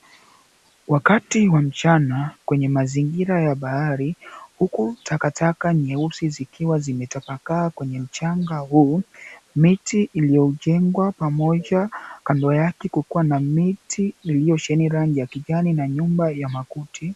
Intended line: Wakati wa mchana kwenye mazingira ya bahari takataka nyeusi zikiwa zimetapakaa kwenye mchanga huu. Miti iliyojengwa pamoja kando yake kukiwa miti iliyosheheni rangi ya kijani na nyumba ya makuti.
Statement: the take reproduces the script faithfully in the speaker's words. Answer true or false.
false